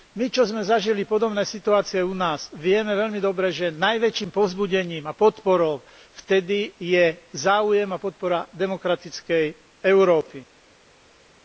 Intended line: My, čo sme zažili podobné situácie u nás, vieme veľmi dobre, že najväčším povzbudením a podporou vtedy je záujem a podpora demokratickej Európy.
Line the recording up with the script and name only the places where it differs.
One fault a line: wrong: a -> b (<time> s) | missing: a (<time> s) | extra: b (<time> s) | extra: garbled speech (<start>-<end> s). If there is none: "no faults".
no faults